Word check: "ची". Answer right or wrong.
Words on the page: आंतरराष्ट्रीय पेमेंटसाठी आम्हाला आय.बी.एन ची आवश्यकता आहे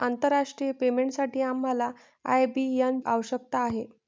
wrong